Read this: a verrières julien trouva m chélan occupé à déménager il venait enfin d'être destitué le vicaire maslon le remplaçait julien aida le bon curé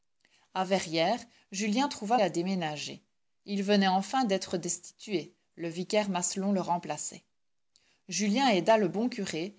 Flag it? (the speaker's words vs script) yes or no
yes